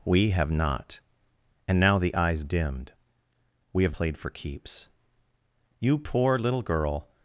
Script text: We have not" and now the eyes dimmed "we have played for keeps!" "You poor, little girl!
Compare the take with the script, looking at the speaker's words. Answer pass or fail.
pass